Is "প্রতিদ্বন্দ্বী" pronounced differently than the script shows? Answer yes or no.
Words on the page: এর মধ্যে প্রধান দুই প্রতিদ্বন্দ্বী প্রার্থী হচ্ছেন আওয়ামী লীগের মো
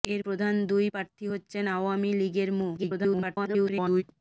yes